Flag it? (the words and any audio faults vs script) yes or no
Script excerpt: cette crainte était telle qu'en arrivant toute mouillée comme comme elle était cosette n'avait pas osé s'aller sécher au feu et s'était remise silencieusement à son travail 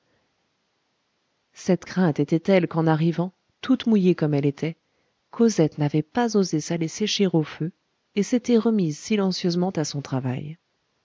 yes